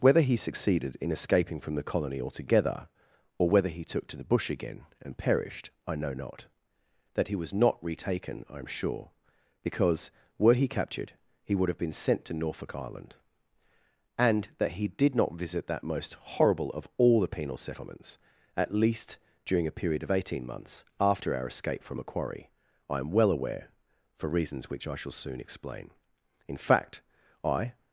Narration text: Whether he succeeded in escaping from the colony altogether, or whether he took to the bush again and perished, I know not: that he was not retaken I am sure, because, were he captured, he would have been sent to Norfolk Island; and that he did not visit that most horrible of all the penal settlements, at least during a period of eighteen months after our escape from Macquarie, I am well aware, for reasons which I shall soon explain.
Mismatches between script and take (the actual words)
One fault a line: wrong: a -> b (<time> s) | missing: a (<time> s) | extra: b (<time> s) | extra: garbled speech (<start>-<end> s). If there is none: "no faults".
extra: In fact I (26.5 s)